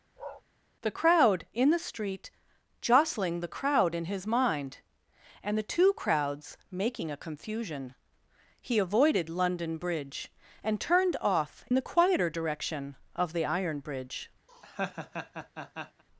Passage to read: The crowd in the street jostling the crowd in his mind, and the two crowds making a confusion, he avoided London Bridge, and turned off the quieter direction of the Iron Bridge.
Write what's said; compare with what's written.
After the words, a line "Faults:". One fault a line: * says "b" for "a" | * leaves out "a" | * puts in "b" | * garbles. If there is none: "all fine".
The crowd in the street jostling the crowd in his mind, and the two crowds making a confusion, he avoided London Bridge, and turned off the quieter direction of the Iron Bridge.
Faults:
all fine